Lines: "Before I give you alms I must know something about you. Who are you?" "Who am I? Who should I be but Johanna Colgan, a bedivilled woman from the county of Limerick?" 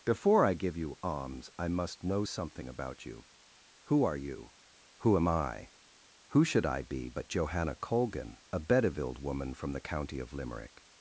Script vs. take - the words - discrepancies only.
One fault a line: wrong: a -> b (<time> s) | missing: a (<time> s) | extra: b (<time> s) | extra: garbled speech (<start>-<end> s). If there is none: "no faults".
no faults